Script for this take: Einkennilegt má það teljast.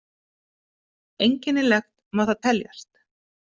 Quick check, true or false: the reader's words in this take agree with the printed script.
true